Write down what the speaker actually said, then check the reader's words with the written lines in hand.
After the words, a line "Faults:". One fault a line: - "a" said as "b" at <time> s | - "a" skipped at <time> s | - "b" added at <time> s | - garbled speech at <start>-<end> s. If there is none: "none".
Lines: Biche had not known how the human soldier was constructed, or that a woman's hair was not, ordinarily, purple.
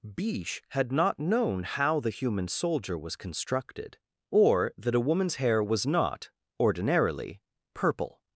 Biche had not known how the human soldier was constructed, or that a woman's hair was not, ordinarily, purple.
Faults:
none